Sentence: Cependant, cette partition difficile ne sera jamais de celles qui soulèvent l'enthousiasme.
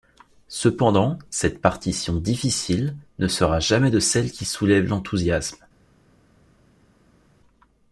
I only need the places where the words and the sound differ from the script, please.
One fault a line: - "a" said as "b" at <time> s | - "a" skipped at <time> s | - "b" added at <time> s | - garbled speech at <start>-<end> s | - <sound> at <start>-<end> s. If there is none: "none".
none